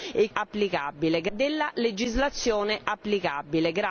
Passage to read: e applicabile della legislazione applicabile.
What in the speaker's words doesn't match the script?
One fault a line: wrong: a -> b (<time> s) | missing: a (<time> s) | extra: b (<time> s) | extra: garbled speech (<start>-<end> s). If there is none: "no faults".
no faults